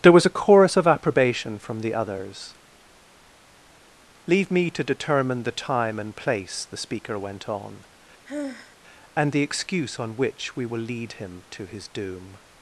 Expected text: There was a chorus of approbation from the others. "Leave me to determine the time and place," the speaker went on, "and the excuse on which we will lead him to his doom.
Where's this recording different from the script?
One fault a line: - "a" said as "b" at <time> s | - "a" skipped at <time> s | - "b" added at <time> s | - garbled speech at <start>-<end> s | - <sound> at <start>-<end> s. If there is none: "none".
- sigh at 8.2-8.8 s